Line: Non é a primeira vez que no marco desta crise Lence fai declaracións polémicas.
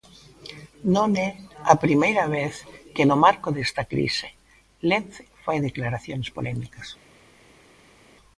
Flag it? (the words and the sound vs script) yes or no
no